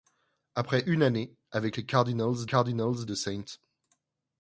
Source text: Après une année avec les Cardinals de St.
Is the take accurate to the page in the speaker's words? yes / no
no